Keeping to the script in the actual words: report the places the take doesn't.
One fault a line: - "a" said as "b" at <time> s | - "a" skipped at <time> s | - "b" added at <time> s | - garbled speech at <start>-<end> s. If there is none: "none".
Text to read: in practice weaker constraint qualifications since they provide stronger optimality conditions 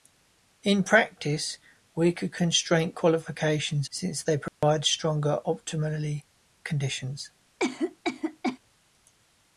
none